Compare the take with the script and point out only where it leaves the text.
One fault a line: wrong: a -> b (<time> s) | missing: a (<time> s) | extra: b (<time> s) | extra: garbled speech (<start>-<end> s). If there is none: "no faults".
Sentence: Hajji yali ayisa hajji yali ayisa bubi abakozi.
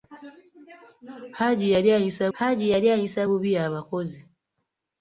no faults